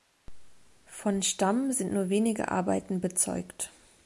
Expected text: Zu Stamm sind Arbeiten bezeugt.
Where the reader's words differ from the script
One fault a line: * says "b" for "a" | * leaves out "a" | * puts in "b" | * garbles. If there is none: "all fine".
* says "Von" for "Zu"
* puts in "nur wenige"